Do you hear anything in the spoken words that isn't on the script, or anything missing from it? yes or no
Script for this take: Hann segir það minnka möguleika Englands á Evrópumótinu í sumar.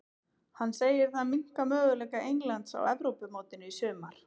no